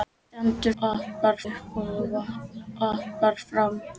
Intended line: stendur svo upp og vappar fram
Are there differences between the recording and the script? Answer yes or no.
yes